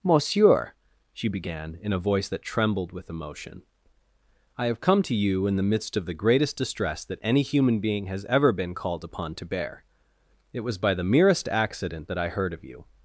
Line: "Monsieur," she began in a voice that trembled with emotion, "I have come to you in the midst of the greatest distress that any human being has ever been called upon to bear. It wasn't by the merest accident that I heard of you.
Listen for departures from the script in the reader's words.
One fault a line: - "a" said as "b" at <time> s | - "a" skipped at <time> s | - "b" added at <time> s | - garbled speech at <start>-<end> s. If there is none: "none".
- "wasn't" said as "was" at 10.6 s